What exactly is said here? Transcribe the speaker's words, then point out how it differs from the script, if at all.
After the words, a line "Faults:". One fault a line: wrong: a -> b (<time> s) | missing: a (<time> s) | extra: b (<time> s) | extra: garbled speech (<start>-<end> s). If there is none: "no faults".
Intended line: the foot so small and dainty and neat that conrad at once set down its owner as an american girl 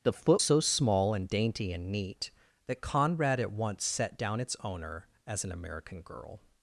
the foot so small and dainty and neat that conrad at once set down its owner as an american girl
Faults:
no faults